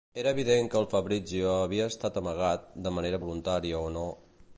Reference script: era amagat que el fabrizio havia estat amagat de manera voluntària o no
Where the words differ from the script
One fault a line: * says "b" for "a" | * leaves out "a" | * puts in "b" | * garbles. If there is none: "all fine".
* says "evident" for "amagat"